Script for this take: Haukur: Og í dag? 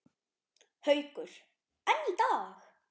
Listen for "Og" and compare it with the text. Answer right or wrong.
wrong